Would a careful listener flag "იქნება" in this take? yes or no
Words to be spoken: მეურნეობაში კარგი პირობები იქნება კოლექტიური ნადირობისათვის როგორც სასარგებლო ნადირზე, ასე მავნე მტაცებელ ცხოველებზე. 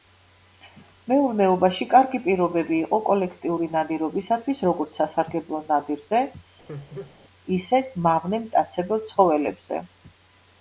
yes